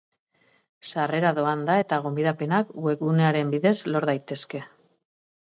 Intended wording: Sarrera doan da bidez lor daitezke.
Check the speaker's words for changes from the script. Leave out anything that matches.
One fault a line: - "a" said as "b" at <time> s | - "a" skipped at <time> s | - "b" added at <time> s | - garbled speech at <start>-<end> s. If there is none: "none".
- "eta gonbidapenak webgunearen" added at 1.8 s